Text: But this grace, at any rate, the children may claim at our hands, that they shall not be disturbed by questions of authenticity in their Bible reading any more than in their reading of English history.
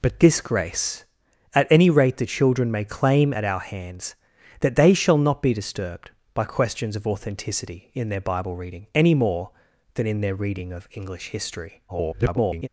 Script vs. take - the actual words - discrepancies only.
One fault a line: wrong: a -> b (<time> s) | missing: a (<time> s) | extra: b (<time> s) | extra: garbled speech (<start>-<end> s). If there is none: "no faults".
extra: garbled speech (11.9-12.7 s)